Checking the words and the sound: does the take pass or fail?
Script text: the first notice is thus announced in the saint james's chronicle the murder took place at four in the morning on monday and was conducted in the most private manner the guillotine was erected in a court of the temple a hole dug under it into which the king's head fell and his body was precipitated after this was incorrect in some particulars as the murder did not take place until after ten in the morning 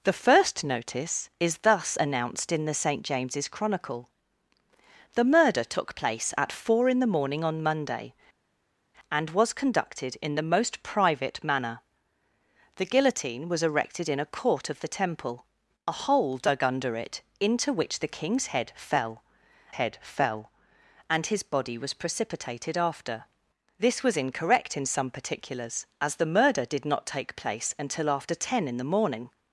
fail